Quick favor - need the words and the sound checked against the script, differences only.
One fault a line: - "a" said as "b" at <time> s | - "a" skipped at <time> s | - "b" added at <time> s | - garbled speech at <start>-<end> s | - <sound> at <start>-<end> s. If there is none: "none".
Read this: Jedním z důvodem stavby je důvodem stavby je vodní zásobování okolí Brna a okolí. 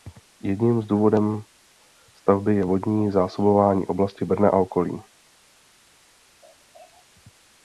- "důvodem stavby je" skipped at 2.6 s
- "okolí" said as "oblasti" at 3.9 s